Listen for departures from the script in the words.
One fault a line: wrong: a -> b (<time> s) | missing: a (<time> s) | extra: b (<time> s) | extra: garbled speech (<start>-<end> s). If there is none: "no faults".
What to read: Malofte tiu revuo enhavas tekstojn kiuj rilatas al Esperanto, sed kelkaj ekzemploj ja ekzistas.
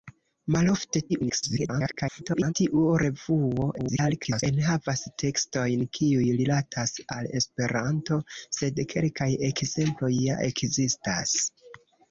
extra: garbled speech (1.1-2.5 s)
extra: garbled speech (3.8-4.4 s)